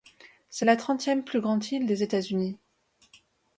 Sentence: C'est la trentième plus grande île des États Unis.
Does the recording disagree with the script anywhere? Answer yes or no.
no